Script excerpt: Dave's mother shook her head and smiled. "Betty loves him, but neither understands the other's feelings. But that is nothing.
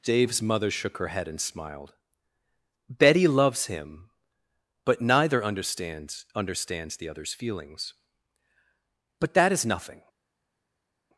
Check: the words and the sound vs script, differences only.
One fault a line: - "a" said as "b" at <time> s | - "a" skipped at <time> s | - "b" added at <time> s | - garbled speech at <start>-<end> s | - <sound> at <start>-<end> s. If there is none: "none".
- "understands" added at 6.4 s